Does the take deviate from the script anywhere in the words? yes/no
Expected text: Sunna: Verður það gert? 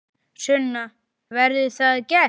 no